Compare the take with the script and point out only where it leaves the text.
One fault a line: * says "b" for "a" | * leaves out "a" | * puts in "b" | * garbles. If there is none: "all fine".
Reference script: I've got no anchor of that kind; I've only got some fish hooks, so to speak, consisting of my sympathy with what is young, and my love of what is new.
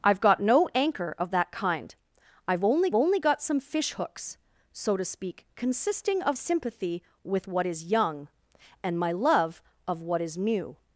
* puts in "only"
* leaves out "my"